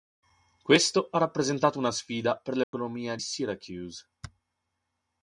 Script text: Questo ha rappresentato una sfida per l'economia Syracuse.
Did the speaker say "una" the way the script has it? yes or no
yes